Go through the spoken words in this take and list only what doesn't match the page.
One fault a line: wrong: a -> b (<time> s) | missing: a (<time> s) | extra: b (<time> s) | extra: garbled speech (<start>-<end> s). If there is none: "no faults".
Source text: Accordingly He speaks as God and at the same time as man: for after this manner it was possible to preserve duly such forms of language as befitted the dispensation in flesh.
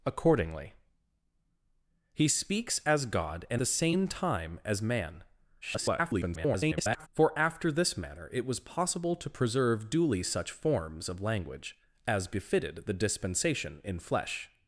missing: at (3.6 s)
extra: garbled speech (5.6-7.1 s)